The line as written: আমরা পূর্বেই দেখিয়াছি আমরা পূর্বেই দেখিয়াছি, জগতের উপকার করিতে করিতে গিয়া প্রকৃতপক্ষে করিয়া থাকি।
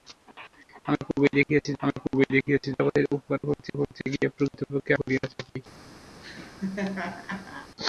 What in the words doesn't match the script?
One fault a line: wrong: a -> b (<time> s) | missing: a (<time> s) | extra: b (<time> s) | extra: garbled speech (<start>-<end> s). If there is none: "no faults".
no faults